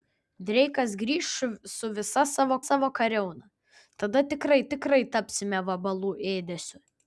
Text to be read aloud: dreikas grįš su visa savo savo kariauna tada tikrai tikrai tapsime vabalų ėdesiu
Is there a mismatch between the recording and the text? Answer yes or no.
no